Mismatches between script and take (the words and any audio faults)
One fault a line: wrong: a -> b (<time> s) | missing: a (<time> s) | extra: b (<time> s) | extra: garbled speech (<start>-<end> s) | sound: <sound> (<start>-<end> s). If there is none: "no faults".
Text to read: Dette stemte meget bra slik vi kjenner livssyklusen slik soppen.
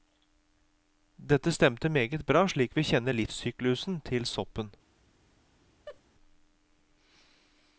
wrong: slik -> til (4.0 s)
sound: laugh (5.9-6.0 s)